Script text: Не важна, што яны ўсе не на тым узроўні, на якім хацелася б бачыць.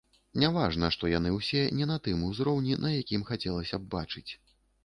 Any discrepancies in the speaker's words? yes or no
no